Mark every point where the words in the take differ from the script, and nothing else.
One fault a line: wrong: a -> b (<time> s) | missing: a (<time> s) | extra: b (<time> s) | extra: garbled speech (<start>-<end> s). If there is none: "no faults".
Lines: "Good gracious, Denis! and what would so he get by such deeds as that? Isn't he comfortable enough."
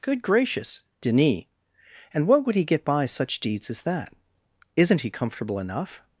missing: so (2.5 s)